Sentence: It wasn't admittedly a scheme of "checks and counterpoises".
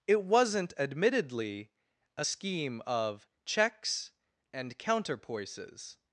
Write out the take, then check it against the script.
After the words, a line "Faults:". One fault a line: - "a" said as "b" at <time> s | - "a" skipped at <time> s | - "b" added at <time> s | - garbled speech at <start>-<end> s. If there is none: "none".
It wasn't admittedly a scheme of "checks and counterpoises".
Faults:
none